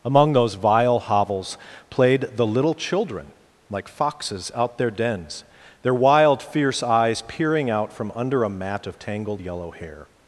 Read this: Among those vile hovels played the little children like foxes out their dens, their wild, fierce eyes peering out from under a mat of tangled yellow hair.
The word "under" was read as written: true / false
true